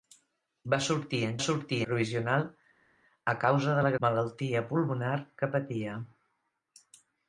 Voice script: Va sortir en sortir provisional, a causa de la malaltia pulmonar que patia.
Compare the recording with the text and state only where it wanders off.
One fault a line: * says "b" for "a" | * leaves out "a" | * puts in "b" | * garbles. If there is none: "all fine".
all fine